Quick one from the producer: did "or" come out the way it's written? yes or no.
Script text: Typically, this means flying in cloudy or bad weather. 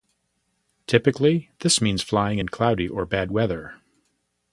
yes